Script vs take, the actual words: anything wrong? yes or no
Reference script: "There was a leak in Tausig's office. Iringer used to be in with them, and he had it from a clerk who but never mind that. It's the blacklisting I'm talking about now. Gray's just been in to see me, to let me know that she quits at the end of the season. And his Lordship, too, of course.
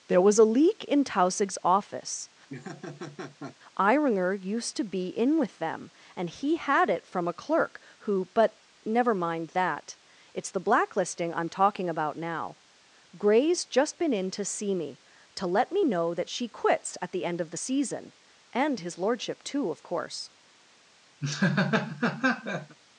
no